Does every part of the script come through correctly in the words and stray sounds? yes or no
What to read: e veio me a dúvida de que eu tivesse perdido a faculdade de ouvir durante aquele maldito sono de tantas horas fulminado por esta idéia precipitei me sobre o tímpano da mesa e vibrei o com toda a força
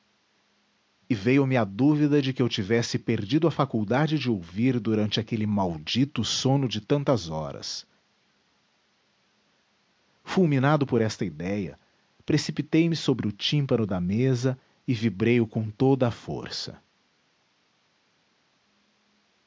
yes